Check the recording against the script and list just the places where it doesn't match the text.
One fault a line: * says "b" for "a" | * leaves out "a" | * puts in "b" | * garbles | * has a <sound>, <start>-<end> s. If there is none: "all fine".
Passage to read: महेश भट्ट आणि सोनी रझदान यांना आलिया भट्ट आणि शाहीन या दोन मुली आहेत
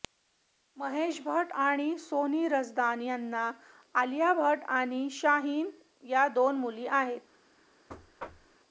* has a thud, 7.9-8.6 s